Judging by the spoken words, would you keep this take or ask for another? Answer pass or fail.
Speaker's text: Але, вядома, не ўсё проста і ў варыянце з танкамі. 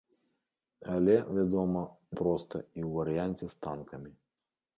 fail